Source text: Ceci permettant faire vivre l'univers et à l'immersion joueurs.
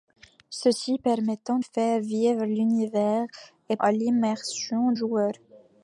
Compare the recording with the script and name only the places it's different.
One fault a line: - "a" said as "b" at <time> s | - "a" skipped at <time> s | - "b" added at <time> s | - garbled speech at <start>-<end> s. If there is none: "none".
none